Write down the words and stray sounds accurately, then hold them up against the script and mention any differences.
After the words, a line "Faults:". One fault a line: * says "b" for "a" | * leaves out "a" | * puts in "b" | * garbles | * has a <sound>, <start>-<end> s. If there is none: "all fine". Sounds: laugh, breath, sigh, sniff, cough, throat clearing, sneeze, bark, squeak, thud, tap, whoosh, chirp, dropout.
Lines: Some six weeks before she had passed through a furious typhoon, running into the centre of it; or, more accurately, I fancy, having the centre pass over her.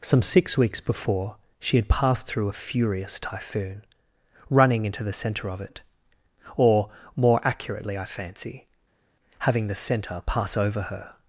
Some six weeks before she had passed through a furious typhoon, running into the centre of it; or, more accurately, I fancy, having the centre pass over her.
Faults:
all fine